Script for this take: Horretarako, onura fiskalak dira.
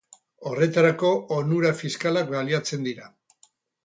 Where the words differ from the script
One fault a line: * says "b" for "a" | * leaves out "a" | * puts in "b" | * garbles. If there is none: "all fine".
* puts in "baliatzen"